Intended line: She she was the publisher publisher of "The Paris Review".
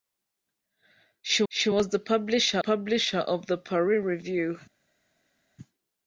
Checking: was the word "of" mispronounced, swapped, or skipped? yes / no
no